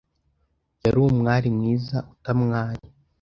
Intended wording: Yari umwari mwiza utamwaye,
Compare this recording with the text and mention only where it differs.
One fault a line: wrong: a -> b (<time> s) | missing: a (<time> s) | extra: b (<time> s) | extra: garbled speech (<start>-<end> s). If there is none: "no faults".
no faults